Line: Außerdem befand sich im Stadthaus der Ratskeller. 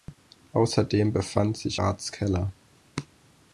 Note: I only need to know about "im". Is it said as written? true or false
false